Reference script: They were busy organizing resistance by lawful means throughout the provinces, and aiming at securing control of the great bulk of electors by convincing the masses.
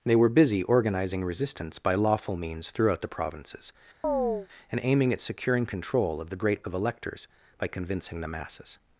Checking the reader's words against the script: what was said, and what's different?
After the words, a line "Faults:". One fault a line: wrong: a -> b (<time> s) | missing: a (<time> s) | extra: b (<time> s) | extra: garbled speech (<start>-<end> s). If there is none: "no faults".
They were busy organizing resistance by lawful means throughout the provinces, and aiming at securing control of the great of electors by convincing the masses.
Faults:
missing: bulk (6.6 s)